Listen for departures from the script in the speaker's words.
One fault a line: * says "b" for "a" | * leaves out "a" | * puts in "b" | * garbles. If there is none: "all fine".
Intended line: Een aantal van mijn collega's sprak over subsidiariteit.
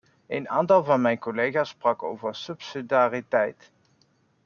all fine